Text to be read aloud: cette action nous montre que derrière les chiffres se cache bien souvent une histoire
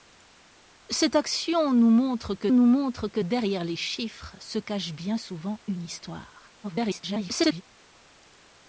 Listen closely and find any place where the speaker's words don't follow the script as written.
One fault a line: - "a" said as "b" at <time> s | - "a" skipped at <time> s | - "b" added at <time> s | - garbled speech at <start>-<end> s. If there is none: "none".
- "nous montre que" added at 2.5 s
- garbled speech at 6.6-7.6 s